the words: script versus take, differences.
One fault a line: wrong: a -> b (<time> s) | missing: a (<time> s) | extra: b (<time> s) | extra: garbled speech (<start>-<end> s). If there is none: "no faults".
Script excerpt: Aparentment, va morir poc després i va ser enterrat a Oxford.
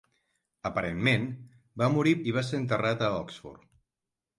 missing: poc després (2.1 s)